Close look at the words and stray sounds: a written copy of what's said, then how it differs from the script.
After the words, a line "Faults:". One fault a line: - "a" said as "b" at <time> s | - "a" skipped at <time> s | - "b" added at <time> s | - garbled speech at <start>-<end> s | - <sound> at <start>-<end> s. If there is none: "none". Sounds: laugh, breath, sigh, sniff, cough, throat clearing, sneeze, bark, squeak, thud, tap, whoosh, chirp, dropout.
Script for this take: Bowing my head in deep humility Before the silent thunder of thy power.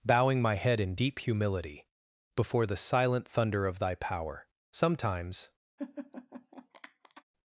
Bowing my head in deep humility Before the silent thunder of thy power. Sometimes
Faults:
- "Sometimes" added at 4.7 s
- laugh at 5.8-7.2 s